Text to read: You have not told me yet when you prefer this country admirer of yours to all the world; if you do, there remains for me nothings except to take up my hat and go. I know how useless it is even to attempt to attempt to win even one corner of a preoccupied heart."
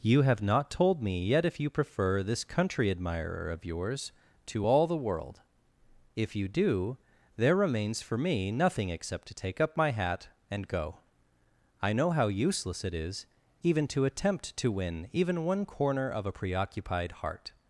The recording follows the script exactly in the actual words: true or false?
false